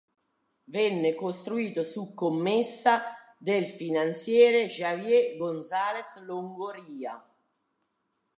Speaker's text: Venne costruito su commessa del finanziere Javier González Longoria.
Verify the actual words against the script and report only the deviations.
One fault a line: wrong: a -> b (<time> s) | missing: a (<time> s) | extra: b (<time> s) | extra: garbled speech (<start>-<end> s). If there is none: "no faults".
no faults